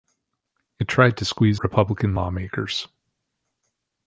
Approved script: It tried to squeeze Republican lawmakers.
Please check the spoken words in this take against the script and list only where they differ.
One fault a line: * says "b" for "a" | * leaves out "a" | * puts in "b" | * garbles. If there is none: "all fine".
all fine